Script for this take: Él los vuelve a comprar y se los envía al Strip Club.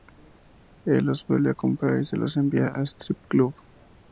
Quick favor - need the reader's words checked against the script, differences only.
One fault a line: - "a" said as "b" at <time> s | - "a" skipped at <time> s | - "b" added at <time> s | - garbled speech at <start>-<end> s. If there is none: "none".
none